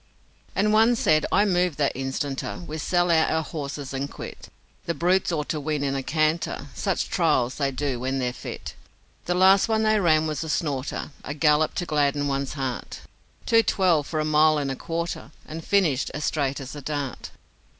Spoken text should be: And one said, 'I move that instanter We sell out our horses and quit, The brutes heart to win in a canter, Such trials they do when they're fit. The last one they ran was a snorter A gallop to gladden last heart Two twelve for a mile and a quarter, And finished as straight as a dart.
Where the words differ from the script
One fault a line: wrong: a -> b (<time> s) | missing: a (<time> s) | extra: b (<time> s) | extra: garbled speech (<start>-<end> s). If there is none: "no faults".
wrong: heart -> ought (5.3 s)
wrong: last -> one's (12.3 s)